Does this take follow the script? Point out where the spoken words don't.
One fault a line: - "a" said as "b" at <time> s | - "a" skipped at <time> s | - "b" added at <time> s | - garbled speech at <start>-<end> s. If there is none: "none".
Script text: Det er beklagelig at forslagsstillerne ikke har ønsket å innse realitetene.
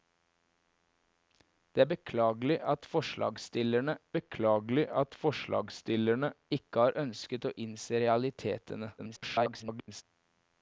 - "beklagelig at forslagsstillerne" added at 4.2 s
- garbled speech at 9.0-10.0 s